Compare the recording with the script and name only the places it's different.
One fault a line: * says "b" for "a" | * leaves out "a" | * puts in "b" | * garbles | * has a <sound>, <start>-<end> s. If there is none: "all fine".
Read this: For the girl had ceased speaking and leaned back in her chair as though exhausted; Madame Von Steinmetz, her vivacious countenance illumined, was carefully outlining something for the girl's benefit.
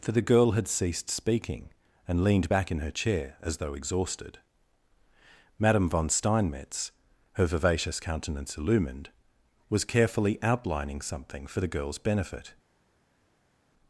all fine